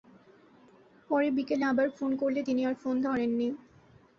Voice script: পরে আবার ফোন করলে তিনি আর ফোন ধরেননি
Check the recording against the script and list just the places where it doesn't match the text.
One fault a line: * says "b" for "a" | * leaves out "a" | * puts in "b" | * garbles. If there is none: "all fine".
* puts in "বিকেলে"